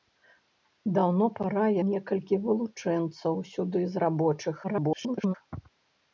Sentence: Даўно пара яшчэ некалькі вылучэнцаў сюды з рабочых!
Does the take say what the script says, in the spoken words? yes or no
no